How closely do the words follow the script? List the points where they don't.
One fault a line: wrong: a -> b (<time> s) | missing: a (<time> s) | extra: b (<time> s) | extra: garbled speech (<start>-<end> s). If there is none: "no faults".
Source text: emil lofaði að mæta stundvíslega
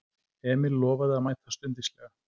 no faults